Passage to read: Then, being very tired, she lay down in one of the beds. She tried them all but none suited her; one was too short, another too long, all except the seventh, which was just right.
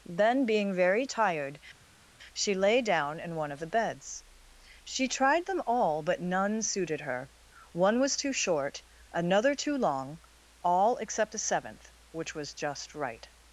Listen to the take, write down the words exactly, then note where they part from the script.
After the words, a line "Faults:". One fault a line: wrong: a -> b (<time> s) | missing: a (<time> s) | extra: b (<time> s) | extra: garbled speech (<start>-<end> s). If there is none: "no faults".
Then, being very tired, she lay down in one of the beds. She tried them all but none suited her; one was too short, another too long, all except the seventh, which was just right.
Faults:
no faults